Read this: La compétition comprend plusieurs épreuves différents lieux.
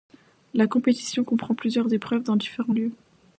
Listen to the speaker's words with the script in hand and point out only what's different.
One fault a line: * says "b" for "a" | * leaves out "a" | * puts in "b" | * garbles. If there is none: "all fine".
* puts in "dans"